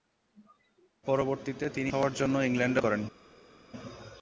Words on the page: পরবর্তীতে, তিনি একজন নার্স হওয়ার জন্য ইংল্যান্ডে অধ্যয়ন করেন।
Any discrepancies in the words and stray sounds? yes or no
yes